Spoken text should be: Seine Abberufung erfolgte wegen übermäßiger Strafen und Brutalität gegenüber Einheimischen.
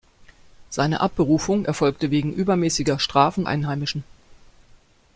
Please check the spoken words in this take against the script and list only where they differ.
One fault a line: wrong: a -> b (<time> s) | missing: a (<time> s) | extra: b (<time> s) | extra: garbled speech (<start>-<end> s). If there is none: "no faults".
missing: und Brutalität gegenüber (3.4 s)